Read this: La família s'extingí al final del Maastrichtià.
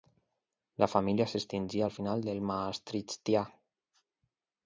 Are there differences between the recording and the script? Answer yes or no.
no